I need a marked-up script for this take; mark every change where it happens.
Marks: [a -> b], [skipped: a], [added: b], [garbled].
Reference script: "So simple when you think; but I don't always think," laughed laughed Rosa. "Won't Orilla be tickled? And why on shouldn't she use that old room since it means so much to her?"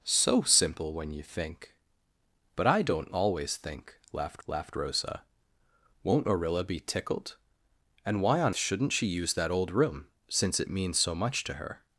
"So simple when you think; but I don't always think," laughed laughed Rosa. "Won't Orilla be tickled? And why on shouldn't she use that old room since it means so much to her?"